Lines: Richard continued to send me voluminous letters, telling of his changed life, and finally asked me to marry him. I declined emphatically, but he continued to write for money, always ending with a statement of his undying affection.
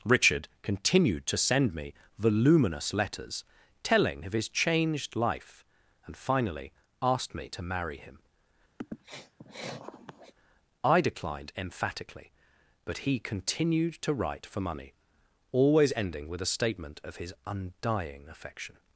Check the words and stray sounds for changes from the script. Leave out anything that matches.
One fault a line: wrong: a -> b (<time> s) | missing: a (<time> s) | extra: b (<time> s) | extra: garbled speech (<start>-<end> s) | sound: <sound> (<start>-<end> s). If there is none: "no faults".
sound: sniff (8.8-10.3 s)